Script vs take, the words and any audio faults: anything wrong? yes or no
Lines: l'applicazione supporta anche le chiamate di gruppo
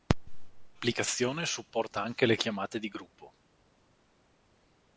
no